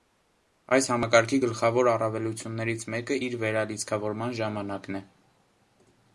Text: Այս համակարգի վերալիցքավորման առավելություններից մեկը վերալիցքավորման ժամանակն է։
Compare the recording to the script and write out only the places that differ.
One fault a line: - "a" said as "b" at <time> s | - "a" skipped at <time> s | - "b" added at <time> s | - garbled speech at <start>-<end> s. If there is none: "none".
- "վերալիցքավորման" said as "գլխավոր" at 1.4 s
- "իր" added at 3.3 s